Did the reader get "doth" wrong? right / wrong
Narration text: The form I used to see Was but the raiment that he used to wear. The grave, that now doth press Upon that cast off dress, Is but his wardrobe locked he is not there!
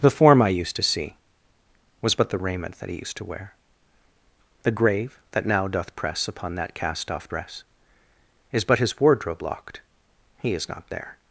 right